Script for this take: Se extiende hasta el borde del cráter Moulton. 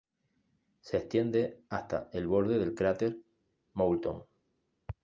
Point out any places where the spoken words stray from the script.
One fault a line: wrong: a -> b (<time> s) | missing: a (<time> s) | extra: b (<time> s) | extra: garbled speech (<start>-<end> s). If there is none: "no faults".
no faults